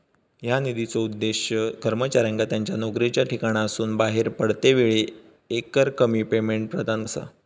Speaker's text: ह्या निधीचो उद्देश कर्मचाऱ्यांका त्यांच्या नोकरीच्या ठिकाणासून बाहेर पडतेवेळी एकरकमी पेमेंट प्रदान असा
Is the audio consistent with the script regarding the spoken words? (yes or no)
yes